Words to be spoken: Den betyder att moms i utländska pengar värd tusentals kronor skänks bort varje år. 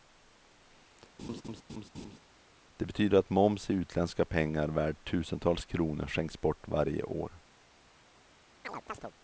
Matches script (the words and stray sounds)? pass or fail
fail